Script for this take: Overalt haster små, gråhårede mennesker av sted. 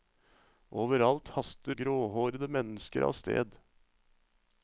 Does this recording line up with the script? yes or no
no